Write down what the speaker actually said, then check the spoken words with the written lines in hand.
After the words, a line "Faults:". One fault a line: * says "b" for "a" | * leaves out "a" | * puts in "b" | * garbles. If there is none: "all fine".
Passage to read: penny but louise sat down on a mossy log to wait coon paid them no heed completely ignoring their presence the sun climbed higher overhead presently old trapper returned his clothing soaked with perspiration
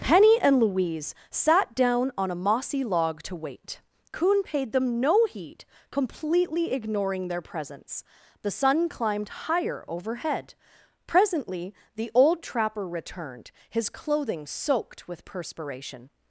penny and louise sat down on a mossy log to wait coon paid them no heed completely ignoring their presence the sun climbed higher overhead presently the old trapper returned his clothing soaked with perspiration
Faults:
* says "and" for "but"
* puts in "the"